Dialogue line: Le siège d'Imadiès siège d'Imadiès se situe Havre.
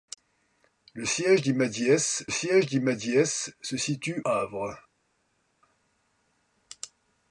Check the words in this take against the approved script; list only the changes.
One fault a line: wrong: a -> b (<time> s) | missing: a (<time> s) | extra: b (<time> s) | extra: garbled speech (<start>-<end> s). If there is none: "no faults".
no faults